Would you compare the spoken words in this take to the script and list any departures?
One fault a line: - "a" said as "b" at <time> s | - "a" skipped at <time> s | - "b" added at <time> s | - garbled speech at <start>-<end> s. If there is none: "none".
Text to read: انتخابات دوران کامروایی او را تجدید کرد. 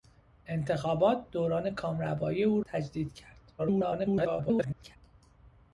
- "را" skipped at 2.6 s
- garbled speech at 3.6-5.0 s